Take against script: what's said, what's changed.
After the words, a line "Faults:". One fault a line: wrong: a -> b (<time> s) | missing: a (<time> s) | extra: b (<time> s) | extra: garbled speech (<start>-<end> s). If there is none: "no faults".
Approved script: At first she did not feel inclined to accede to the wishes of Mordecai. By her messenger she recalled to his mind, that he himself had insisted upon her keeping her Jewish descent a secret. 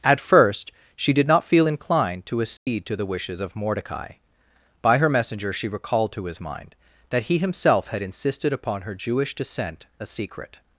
At first she did not feel inclined to accede to the wishes of Mordecai. By her messenger she recalled to his mind, that he himself had insisted upon her Jewish descent a secret.
Faults:
missing: keeping her (9.0 s)